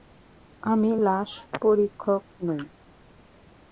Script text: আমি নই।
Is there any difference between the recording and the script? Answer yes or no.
yes